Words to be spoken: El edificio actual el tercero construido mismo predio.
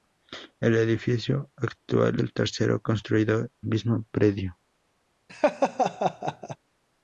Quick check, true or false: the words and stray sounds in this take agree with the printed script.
false